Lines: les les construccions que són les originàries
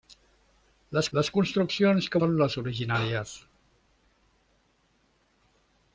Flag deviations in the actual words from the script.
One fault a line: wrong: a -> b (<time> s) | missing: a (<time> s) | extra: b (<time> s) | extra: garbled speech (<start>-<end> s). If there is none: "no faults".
no faults